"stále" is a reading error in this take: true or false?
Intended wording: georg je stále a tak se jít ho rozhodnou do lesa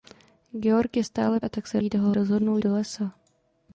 false